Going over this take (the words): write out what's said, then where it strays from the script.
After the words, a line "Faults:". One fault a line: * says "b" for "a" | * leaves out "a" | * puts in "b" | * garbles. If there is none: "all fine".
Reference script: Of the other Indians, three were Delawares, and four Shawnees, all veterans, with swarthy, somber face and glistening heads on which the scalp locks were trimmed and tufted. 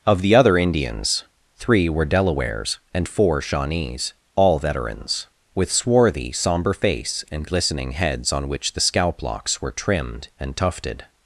Of the other Indians, three were Delawares, and four Shawnees, all veterans, with swarthy, somber face and glistening heads on which the scalp locks were trimmed and tufted.
Faults:
all fine